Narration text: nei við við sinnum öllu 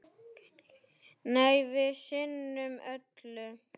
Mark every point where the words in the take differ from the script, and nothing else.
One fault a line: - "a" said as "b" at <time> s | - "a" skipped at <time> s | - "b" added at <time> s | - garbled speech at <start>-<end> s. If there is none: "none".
- "við" skipped at 1.9 s